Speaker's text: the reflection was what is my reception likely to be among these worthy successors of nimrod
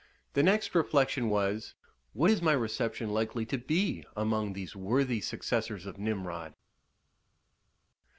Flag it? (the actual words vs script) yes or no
yes